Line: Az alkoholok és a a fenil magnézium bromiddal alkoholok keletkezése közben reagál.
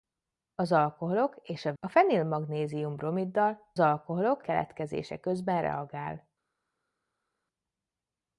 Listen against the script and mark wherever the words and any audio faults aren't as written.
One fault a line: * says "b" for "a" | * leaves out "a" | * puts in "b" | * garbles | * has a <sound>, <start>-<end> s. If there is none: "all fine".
all fine